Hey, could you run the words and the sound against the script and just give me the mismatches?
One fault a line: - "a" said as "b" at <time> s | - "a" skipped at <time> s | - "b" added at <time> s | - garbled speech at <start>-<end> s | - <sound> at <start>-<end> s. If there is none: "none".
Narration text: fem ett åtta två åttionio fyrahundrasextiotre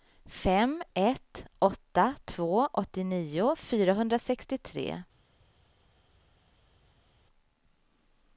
none